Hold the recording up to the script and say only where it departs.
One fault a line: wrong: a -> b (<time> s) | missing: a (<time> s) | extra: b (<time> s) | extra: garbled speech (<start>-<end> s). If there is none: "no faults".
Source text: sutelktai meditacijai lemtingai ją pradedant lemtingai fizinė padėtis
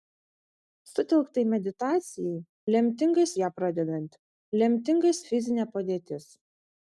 no faults